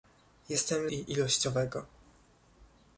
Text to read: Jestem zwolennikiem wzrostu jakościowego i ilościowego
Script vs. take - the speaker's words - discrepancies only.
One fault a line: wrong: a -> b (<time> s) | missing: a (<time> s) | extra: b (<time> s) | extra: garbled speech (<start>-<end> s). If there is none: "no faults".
missing: zwolennikiem wzrostu jakościowego (0.9 s)